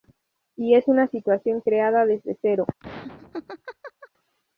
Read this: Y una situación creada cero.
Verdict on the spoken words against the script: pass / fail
fail